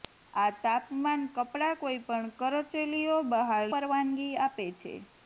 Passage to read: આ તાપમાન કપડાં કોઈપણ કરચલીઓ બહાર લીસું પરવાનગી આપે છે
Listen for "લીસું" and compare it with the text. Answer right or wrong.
wrong